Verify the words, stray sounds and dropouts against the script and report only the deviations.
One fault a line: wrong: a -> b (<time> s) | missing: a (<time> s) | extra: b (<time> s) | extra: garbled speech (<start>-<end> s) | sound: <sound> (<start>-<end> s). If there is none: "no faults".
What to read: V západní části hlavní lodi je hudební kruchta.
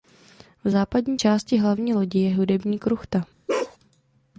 sound: bark (3.5-3.8 s)